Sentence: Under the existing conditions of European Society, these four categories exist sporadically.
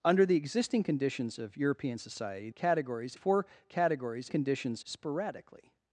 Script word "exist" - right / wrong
wrong